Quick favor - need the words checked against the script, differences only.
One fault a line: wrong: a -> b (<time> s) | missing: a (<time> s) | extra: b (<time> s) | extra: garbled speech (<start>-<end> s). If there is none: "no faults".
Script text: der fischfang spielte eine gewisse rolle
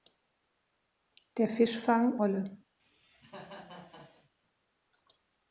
missing: spielte eine gewisse (2.2 s)